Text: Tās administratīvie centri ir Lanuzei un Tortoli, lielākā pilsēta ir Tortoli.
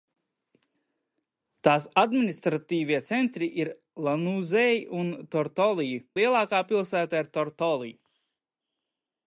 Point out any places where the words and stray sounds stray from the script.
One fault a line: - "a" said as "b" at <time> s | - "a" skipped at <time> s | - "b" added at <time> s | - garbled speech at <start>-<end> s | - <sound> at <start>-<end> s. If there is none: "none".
none